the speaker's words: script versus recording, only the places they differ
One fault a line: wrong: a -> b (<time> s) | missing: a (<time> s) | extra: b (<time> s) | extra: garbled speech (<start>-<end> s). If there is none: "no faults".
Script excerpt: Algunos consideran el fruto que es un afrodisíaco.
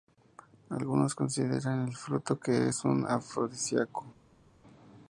no faults